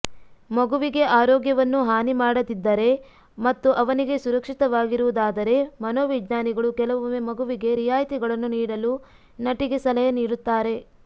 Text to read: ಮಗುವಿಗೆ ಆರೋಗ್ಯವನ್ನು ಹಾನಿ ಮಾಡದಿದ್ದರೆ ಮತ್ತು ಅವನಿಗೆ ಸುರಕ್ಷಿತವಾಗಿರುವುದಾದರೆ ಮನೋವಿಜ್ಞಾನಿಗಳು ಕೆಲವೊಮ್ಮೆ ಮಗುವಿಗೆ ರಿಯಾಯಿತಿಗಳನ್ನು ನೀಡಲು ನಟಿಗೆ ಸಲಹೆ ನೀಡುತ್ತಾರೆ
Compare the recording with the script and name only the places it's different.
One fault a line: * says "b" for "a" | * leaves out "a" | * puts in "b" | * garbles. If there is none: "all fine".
all fine